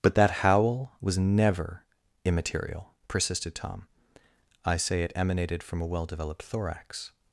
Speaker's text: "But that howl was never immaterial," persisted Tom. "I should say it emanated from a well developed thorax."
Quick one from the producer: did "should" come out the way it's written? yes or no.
no